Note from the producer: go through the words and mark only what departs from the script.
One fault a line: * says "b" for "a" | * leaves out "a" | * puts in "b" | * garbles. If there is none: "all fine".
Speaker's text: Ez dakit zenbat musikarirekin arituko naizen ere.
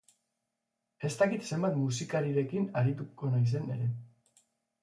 all fine